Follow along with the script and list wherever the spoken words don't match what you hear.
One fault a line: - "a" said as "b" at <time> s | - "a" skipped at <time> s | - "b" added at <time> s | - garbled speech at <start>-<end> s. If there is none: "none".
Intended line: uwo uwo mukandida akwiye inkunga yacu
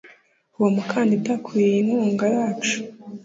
- "uwo" skipped at 0.7 s